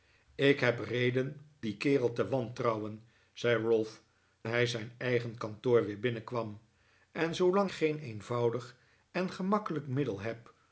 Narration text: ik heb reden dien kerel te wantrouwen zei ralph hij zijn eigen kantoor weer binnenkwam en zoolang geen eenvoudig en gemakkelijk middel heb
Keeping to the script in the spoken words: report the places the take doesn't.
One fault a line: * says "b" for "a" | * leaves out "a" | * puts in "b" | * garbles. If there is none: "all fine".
all fine